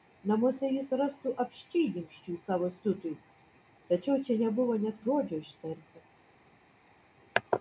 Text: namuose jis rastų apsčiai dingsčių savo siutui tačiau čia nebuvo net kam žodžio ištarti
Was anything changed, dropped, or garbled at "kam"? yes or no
yes